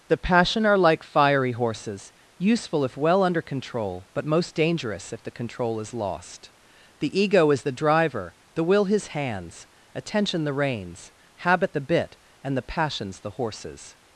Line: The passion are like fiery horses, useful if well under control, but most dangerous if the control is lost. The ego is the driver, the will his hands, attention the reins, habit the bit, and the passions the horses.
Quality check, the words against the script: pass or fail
pass